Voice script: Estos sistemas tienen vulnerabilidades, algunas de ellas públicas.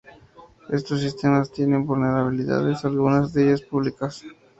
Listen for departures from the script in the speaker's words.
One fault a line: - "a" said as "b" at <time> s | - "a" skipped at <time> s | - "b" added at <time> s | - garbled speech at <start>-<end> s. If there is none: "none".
none